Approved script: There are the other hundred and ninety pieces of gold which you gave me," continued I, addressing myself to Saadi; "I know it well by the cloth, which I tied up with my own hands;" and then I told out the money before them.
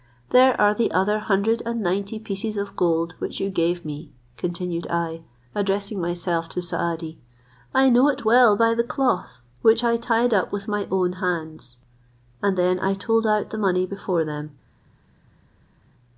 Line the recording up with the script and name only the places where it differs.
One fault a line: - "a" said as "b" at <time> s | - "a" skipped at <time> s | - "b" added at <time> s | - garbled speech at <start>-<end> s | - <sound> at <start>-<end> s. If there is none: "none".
none